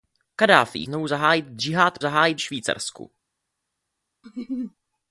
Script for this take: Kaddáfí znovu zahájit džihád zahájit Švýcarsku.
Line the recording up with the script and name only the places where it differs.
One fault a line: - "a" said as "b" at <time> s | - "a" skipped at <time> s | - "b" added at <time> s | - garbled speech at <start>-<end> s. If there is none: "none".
none